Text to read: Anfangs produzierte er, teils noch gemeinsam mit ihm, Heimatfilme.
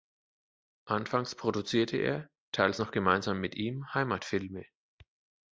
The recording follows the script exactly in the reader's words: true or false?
true